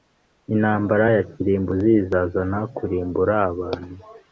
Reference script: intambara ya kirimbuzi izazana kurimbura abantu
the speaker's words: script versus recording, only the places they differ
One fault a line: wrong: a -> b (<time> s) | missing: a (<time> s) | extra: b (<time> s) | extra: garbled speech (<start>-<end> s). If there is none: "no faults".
no faults